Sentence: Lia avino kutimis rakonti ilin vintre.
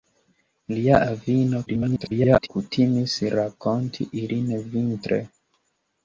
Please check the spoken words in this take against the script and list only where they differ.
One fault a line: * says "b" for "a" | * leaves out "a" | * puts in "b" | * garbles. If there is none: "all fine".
* garbles